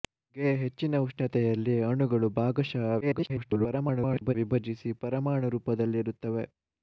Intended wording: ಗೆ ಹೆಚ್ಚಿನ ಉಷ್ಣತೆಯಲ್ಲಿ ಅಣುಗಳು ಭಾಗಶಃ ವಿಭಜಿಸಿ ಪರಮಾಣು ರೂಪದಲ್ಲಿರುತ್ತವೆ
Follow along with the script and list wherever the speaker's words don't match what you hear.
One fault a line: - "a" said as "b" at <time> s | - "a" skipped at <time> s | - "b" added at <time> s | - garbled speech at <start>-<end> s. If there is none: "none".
- garbled speech at 3.0-4.3 s